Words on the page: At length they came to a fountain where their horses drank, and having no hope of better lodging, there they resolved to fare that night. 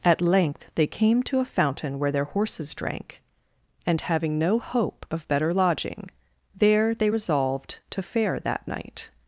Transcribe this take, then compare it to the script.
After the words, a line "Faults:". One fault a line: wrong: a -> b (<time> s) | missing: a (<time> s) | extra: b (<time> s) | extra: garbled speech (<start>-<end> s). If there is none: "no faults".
At length they came to a fountain where their horses drank, and having no hope of better lodging, there they resolved to fare that night.
Faults:
no faults